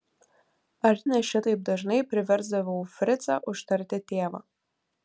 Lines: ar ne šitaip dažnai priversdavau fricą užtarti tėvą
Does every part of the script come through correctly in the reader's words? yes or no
yes